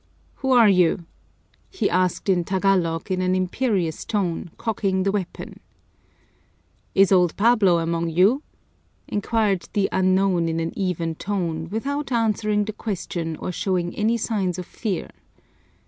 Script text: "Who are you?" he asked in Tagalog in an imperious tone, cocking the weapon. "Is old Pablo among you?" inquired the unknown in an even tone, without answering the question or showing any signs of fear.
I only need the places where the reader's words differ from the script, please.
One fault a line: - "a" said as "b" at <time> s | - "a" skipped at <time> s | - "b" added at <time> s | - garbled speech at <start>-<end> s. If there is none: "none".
none